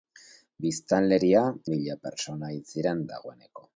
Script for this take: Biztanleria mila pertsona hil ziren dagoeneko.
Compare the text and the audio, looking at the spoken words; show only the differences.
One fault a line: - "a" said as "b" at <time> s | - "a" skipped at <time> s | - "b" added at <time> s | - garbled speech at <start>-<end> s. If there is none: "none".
none